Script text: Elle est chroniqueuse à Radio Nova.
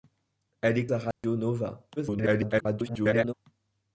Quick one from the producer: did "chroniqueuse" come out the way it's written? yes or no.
no